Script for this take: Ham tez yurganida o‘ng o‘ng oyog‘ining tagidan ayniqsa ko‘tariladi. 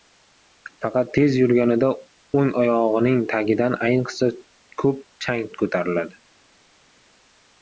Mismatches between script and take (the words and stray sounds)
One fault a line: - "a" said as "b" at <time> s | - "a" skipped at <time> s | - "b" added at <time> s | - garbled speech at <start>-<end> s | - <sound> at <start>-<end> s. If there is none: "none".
- "Ham" said as "Faqat" at 0.8 s
- "o‘ng" skipped at 2.5 s
- "ko‘p chang" added at 4.9 s